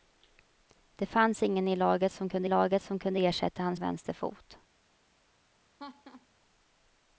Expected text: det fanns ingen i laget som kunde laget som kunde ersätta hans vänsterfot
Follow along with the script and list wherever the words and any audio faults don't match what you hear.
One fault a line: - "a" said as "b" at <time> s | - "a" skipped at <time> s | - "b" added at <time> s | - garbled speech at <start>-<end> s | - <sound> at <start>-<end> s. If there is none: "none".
- laugh at 5.8-6.3 s